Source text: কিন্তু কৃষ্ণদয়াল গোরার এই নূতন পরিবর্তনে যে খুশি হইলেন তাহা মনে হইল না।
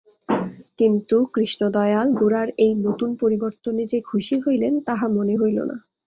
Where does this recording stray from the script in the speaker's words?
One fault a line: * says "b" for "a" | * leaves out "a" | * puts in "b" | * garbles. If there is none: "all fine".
all fine